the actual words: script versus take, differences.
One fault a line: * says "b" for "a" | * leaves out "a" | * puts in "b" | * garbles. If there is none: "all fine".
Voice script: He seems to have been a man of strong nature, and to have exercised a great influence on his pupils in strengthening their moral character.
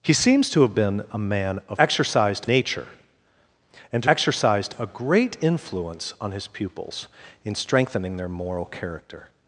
* says "exercised" for "strong"
* leaves out "have"